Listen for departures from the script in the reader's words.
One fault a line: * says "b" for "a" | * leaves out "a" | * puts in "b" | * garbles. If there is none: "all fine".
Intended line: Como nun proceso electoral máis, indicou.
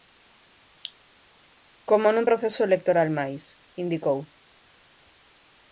all fine